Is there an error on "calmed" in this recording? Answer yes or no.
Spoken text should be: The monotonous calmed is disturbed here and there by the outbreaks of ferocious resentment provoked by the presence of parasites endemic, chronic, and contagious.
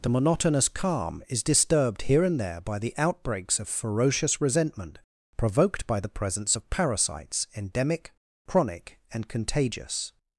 yes